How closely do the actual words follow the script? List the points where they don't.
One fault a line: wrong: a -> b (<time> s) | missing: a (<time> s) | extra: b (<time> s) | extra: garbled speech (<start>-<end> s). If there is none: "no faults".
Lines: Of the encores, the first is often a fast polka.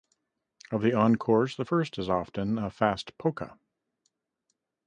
no faults